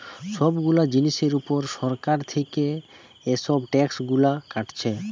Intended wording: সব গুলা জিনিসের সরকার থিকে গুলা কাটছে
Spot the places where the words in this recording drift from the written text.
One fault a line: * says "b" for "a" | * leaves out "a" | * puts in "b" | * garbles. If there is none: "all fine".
* puts in "উপর"
* puts in "এসব ট্যাক্স"